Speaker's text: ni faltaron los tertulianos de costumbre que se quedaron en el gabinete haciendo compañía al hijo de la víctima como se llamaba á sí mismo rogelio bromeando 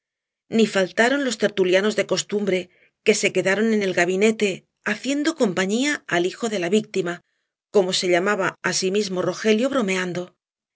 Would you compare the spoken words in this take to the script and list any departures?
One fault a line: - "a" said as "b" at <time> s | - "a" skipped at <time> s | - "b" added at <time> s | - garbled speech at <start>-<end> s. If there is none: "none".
none